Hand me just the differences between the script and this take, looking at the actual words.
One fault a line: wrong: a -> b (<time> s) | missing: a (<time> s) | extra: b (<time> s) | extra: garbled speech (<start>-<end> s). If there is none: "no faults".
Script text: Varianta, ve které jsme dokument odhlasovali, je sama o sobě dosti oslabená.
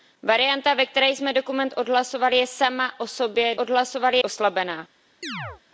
wrong: dosti -> odhlasovali (3.6 s)